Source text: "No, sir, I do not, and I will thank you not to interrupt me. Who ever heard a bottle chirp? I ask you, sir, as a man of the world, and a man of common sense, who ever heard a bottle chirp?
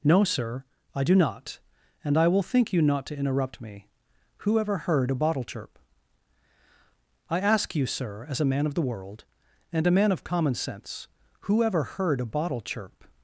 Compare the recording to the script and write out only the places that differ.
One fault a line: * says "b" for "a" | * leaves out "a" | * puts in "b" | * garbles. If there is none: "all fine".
* says "think" for "thank"